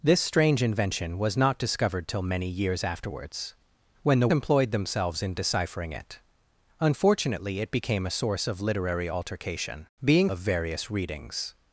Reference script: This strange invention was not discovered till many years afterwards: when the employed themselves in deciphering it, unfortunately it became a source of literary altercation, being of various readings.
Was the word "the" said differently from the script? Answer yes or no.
no